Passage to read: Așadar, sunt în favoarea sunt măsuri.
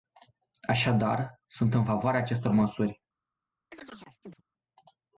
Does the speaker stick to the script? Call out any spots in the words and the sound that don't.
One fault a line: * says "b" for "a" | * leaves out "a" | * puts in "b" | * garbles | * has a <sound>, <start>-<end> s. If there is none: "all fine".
* says "acestor" for "sunt"
* has a chirp, 3.7-4.4 s